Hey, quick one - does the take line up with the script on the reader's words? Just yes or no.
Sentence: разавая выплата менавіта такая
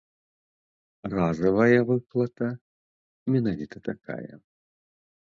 yes